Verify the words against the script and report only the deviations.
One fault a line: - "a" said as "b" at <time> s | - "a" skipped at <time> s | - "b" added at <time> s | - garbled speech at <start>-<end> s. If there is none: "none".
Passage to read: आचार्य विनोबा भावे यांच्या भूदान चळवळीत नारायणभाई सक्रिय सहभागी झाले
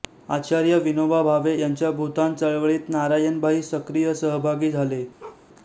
none